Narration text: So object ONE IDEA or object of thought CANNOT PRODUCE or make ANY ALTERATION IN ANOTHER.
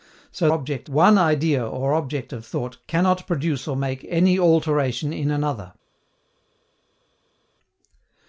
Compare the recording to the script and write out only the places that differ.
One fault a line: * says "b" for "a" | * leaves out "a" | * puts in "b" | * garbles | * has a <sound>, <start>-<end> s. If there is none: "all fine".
all fine